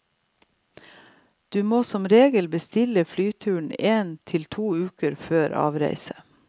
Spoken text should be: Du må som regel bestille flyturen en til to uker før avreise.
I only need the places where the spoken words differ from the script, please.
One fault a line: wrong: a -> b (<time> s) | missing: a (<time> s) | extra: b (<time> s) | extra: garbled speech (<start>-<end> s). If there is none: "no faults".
no faults